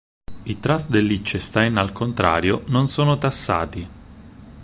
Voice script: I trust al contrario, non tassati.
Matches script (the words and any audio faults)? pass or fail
fail